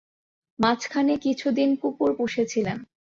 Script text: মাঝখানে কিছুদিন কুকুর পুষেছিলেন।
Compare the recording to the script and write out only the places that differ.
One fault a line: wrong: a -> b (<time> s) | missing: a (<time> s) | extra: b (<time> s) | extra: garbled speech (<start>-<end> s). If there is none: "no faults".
no faults